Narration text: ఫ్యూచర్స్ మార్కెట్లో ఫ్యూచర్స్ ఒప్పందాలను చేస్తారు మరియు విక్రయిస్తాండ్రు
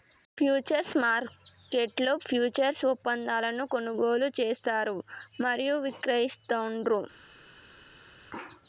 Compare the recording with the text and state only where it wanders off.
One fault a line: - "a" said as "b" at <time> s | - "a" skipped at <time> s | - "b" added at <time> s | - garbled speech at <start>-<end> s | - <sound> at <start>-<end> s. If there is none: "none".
- "కొనుగోలు" added at 3.7 s